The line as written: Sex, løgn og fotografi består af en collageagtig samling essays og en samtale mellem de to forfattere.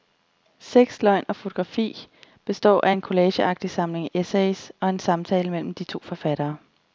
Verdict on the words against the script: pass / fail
pass